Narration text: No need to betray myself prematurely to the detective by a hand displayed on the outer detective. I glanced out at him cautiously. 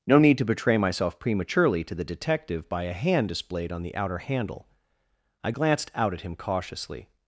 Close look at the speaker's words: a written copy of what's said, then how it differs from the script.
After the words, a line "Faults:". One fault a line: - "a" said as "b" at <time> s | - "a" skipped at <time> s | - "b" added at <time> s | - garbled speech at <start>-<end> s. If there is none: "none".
No need to betray myself prematurely to the detective by a hand displayed on the outer handle. I glanced out at him cautiously.
Faults:
- "detective" said as "handle" at 4.2 s